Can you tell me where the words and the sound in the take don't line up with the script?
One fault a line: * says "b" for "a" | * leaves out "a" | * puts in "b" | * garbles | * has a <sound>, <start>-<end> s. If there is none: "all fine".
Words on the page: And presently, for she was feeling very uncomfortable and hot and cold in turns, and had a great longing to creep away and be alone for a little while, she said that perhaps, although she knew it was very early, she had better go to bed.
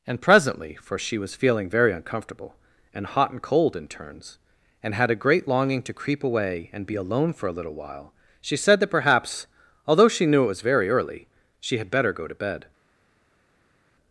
all fine